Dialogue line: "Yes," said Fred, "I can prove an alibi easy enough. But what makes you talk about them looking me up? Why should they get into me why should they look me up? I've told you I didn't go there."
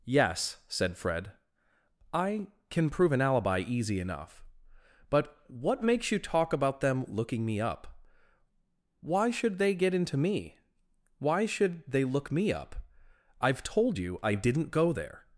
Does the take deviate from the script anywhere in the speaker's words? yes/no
no